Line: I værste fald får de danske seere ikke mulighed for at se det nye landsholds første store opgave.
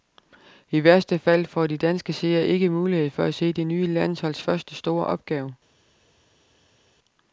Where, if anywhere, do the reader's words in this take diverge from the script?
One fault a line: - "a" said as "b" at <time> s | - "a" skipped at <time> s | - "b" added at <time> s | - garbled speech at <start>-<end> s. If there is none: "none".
none